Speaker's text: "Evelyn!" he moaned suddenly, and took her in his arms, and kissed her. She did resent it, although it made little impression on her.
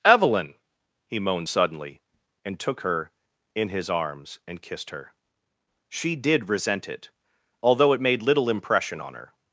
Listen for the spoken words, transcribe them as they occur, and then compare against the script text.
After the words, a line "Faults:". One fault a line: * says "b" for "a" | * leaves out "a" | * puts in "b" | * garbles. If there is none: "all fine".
"Evelyn!" he moaned suddenly, and took her in his arms, and kissed her. She did resent it, although it made little impression on her.
Faults:
all fine